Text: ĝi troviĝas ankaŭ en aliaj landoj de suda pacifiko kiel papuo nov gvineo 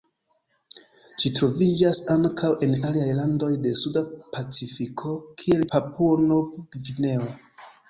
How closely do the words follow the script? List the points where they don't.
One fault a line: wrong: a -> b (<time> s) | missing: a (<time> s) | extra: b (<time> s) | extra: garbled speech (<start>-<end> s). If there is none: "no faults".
no faults